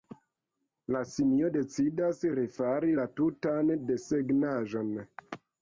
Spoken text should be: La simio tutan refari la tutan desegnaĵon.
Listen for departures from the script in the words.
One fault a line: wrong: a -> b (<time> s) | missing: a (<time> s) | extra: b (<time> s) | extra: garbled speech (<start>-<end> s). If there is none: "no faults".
wrong: tutan -> decidas (1.6 s)